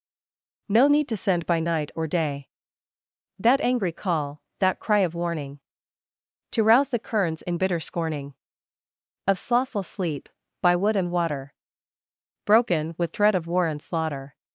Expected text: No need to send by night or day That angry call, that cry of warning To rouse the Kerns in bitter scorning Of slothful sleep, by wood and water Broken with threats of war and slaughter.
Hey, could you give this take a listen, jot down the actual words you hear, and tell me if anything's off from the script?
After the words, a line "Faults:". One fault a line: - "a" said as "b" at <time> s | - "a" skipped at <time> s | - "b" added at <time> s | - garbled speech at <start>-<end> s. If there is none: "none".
No need to send by night or day That angry call, that cry of warning To rouse the Kerns in bitter scorning Of slothful sleep, by wood and water Broken with threat of war and slaughter.
Faults:
- "threats" said as "threat" at 13.1 s